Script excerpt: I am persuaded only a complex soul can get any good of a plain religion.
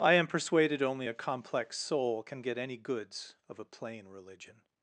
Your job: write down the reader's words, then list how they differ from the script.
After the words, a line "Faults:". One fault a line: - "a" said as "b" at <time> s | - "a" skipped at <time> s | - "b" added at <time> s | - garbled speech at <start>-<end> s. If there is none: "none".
I am persuaded only a complex soul can get any goods of a plain religion.
Faults:
- "good" said as "goods" at 2.8 s